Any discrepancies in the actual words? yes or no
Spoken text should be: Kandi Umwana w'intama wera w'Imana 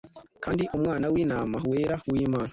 no